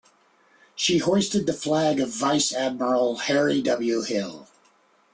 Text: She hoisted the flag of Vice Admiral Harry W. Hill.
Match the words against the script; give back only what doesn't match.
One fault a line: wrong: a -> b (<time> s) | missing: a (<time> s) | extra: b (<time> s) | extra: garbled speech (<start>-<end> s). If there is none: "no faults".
no faults